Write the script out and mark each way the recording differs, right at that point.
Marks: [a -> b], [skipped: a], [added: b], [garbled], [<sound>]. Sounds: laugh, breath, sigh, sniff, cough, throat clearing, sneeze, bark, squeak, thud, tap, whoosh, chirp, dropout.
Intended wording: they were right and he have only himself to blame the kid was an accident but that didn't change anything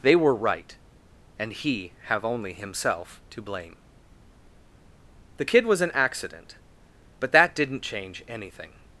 they were right and he have only himself to blame the kid was an accident but that didn't change anything